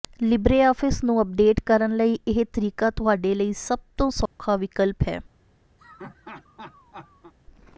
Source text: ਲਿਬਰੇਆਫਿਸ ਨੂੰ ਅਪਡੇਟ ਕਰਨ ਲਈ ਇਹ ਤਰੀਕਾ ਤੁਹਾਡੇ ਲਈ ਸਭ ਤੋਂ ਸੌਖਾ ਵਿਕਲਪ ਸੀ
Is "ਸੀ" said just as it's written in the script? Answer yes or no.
no